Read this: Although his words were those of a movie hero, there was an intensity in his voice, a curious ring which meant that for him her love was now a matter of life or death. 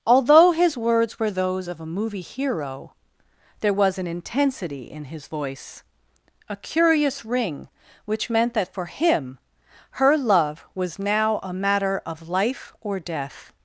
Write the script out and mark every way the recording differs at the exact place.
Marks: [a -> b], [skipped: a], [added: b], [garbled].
Although his words were those of a movie hero, there was an intensity in his voice, a curious ring which meant that for him her love was now a matter of life or death.